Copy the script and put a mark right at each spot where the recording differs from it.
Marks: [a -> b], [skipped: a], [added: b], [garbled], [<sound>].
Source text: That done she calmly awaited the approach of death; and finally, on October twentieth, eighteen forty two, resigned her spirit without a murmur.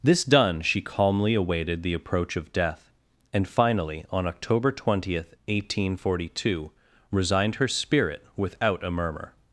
[That -> This] done she calmly awaited the approach of death; and finally, on October twentieth, eighteen forty two, resigned her spirit without a murmur.